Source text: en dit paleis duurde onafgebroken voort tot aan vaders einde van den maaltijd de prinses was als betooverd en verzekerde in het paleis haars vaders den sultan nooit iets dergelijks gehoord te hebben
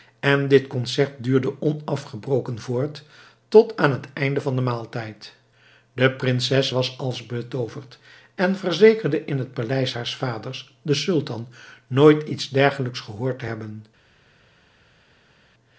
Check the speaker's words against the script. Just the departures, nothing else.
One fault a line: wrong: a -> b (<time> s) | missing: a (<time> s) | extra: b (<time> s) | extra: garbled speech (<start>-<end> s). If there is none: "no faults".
wrong: paleis -> concert (0.7 s)
wrong: vaders -> het (3.9 s)